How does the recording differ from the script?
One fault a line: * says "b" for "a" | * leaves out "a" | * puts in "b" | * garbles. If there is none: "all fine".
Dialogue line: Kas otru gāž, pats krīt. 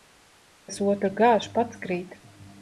all fine